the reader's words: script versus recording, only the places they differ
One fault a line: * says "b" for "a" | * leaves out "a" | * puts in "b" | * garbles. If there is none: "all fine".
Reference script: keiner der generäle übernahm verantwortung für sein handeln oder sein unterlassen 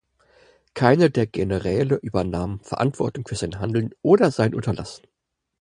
all fine